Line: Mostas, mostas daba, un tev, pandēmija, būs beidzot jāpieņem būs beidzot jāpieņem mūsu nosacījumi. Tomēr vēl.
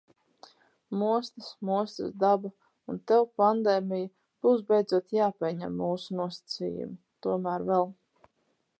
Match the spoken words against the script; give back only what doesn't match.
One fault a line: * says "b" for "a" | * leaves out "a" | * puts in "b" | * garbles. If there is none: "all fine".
* leaves out "būs beidzot jāpieņem"